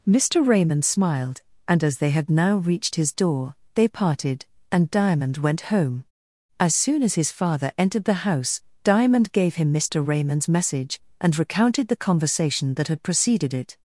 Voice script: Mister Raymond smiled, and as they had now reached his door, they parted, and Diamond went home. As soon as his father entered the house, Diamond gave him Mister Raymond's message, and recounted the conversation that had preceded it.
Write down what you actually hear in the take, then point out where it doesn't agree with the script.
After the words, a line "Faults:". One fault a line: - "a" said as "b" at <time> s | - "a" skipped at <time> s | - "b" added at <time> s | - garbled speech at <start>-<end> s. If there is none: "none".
Mister Raymond smiled, and as they had now reached his door, they parted, and Diamond went home. As soon as his father entered the house, Diamond gave him Mister Raymond's message, and recounted the conversation that had preceded it.
Faults:
none